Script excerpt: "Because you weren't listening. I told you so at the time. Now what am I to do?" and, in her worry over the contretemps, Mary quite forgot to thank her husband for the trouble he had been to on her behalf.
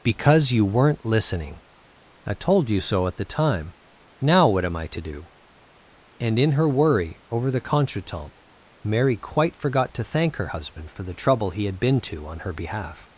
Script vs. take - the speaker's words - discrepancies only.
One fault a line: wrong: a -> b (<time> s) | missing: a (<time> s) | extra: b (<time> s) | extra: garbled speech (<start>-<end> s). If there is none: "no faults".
no faults